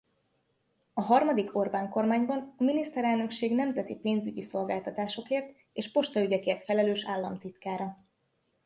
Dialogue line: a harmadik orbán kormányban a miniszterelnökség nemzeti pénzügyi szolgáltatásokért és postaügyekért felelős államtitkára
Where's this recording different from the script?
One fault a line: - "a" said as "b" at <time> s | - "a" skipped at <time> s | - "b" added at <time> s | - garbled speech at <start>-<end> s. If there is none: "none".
none